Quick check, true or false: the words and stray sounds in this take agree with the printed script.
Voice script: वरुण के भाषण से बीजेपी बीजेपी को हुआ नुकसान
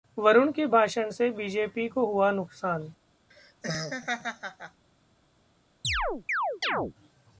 false